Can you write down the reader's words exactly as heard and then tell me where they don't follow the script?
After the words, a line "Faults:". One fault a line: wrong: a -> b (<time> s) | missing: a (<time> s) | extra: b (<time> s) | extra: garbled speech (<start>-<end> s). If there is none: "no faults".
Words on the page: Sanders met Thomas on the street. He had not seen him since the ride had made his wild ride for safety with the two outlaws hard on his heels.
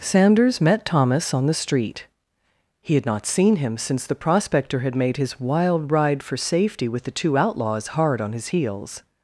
Sanders met Thomas on the street. He had not seen him since the prospector had made his wild ride for safety with the two outlaws hard on his heels.
Faults:
wrong: ride -> prospector (4.2 s)